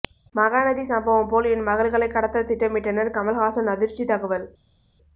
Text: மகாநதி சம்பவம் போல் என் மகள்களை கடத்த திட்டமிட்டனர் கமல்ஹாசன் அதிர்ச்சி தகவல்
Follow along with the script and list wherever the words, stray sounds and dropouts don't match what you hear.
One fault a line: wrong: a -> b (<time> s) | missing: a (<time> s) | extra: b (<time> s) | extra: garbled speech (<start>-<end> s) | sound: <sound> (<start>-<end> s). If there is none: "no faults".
no faults